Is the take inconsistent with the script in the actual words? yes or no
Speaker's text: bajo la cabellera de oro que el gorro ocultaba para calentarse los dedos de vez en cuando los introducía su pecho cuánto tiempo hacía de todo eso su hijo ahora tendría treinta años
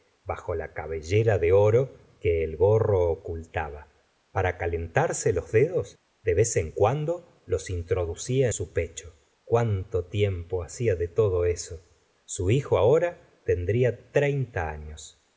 no